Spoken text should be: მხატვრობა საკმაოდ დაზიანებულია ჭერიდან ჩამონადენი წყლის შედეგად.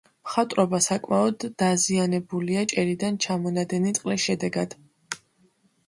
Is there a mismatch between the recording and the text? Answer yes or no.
no